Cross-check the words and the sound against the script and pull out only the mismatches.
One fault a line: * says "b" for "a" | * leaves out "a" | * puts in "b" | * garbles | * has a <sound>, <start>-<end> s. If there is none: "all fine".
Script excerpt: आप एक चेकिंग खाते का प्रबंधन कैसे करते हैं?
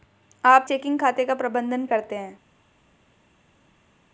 * leaves out "एक"
* leaves out "कैसे"